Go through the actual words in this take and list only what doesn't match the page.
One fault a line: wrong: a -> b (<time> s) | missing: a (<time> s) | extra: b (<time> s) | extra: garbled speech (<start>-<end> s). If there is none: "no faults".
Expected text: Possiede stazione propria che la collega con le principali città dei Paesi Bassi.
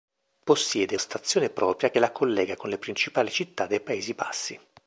no faults